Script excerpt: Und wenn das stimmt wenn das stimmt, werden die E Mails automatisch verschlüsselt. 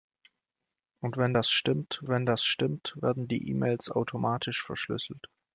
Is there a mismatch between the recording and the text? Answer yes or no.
no